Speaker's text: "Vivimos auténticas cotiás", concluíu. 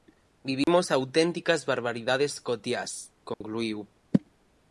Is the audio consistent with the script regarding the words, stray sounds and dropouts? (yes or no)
no